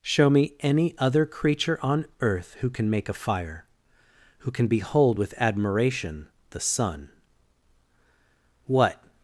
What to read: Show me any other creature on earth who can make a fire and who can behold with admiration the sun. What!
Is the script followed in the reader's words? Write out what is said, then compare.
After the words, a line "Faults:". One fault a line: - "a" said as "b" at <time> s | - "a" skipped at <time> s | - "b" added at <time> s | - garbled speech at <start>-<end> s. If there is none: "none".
Show me any other creature on earth who can make a fire who can behold with admiration the sun. What!
Faults:
- "and" skipped at 3.6 s